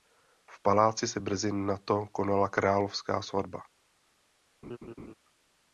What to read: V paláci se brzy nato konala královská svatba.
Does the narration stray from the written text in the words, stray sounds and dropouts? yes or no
yes